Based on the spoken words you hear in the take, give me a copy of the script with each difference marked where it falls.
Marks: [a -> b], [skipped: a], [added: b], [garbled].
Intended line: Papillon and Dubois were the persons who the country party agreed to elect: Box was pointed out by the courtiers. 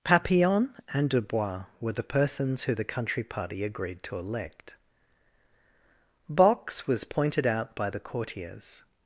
Papillon and Dubois were the persons who the country party agreed to elect: Box was pointed out by the courtiers.